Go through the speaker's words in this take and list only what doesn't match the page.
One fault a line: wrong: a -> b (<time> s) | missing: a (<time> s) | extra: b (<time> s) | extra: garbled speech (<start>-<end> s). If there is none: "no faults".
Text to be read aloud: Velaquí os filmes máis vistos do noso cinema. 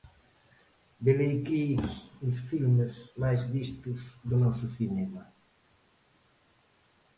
no faults